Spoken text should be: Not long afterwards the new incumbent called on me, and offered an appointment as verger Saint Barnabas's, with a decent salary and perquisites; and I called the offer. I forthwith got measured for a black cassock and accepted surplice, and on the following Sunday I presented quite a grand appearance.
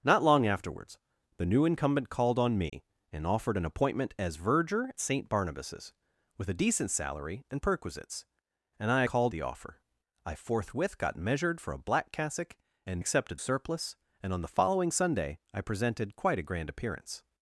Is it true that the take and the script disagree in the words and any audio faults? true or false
true